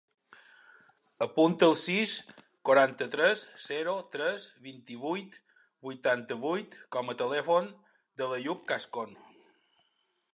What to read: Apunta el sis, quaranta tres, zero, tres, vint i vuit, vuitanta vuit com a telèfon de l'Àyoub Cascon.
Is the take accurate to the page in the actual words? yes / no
yes